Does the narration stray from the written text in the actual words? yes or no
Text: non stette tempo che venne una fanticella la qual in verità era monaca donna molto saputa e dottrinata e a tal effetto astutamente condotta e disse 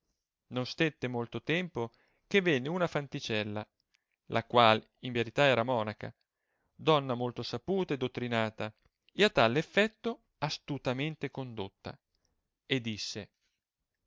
yes